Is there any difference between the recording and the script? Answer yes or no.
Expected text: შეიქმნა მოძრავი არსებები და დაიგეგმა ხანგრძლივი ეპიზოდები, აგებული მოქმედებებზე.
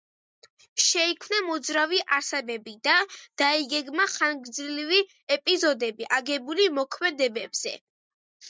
no